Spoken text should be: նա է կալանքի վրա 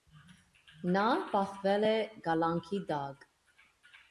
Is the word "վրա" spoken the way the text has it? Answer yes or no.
no